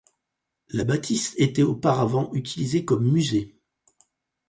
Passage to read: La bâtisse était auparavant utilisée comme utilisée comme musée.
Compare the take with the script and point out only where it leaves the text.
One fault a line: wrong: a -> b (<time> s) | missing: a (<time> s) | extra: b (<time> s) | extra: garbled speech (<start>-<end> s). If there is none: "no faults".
missing: utilisée comme (3.1 s)